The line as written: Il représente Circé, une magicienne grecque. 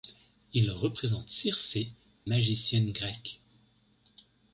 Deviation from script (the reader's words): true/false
true